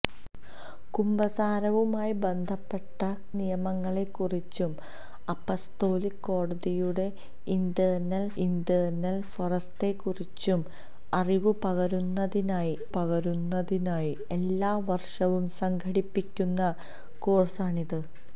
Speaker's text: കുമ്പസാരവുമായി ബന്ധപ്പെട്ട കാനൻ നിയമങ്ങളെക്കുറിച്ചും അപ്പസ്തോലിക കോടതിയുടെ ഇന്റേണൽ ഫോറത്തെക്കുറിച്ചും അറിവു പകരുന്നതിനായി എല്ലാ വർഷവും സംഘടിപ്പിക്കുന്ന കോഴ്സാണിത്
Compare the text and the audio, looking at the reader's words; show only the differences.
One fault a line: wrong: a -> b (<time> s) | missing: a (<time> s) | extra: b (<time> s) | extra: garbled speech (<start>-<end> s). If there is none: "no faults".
missing: കാനൻ (3.0 s)
extra: ഇന്റേണൽ (8.4 s)
extra: പകരുന്നതിനായി (12.9 s)